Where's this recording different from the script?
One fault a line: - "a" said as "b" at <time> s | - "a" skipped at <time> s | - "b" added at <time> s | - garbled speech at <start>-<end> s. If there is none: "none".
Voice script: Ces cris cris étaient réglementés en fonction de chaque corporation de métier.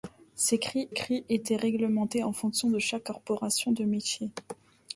none